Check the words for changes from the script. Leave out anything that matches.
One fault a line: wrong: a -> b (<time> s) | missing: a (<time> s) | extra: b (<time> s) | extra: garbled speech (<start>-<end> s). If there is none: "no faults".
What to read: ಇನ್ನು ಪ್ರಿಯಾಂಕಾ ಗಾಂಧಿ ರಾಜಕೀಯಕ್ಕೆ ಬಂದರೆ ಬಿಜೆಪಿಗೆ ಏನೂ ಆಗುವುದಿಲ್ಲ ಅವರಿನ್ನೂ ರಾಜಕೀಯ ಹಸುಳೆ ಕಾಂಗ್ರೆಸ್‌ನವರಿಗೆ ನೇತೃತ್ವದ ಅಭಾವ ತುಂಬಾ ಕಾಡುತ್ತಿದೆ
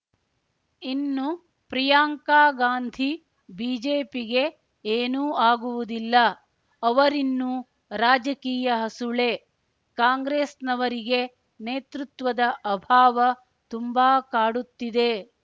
missing: ರಾಜಕೀಯಕ್ಕೆ ಬಂದರೆ (3.1 s)